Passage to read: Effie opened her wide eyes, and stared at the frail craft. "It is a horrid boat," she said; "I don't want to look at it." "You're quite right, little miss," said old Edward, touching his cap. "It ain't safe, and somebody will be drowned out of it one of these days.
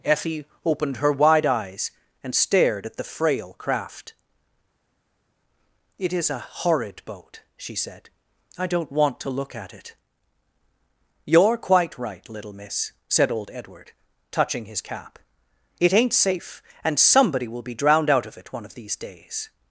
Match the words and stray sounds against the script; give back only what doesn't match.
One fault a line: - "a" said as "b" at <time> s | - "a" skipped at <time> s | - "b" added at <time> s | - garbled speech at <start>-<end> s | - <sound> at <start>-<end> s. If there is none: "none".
none